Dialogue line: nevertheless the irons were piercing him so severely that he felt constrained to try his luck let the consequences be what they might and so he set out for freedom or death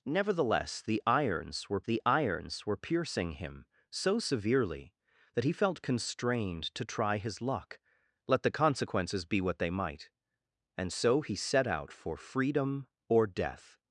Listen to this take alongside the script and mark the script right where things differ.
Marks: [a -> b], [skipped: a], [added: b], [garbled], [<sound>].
nevertheless the irons were [added: the irons were] piercing him so severely that he felt constrained to try his luck let the consequences be what they might and so he set out for freedom or death